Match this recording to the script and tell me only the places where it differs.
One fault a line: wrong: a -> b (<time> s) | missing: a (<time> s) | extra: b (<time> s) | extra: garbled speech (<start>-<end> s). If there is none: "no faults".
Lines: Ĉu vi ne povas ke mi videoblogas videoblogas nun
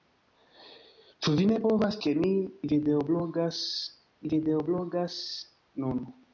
no faults